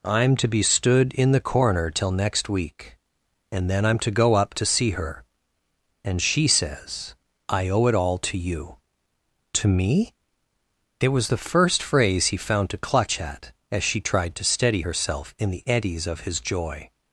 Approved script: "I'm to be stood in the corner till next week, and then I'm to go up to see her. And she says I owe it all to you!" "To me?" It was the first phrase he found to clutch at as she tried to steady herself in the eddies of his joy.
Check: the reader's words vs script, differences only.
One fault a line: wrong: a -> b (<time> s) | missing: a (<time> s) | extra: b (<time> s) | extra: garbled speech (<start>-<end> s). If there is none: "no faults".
no faults